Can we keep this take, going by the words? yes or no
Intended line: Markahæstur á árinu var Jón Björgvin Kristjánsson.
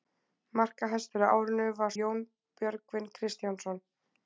yes